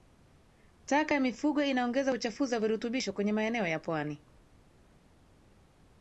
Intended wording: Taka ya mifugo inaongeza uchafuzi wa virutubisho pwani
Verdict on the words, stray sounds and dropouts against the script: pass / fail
fail